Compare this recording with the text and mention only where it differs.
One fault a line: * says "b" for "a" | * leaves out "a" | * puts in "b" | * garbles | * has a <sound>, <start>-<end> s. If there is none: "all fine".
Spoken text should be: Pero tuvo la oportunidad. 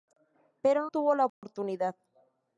* has a dropout, 1.3-1.4 s